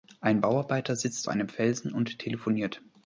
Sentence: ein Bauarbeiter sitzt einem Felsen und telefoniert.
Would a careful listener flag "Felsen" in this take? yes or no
no